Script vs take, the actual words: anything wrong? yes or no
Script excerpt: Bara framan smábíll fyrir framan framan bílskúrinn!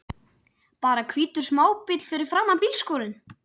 yes